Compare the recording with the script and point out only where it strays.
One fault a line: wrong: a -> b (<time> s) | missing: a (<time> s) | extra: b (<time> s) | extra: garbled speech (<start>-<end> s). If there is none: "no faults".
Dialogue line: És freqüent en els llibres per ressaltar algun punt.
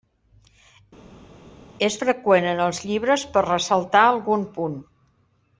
no faults